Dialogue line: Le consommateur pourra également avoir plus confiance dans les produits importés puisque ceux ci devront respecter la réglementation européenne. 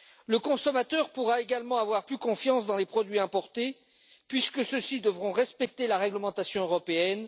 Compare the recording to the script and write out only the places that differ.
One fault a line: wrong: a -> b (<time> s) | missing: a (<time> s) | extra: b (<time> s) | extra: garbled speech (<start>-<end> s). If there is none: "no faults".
no faults